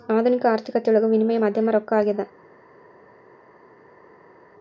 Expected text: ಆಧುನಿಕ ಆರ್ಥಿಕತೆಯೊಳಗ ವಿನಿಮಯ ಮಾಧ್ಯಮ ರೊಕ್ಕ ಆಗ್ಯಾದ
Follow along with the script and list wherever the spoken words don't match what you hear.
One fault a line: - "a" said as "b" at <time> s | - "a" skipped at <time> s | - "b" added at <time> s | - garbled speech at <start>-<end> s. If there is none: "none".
none